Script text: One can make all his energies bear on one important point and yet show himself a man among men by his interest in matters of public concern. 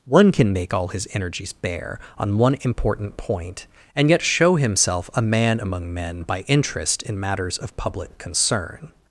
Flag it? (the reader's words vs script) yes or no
yes